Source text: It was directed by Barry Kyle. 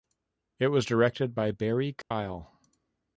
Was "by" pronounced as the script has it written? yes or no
yes